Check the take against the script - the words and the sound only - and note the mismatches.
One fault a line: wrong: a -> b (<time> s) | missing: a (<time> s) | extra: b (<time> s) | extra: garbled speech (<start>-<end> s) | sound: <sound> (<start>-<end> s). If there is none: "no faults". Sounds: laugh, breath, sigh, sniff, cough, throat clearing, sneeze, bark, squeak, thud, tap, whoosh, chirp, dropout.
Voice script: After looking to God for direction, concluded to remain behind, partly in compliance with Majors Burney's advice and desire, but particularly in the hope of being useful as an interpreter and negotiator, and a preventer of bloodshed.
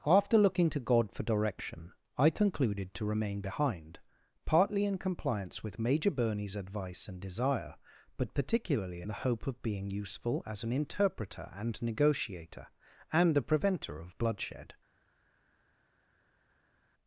extra: I (2.2 s)
wrong: Majors -> Major (5.8 s)